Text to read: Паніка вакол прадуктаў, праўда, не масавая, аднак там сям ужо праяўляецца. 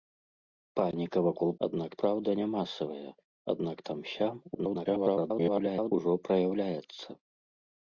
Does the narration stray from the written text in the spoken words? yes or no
yes